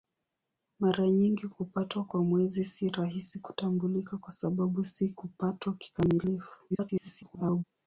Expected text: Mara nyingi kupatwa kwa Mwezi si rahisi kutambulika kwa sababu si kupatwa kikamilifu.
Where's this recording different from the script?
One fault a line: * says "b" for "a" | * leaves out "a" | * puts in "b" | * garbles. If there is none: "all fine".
* garbles